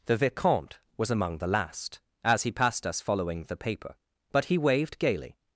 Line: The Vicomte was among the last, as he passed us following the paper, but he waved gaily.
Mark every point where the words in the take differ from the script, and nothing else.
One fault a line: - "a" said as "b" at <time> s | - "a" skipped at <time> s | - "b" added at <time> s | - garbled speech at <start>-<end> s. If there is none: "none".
none